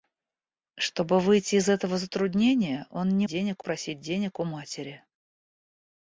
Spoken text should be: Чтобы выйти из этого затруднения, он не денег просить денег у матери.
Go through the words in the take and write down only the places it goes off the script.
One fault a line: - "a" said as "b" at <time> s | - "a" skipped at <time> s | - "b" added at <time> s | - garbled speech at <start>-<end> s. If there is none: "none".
none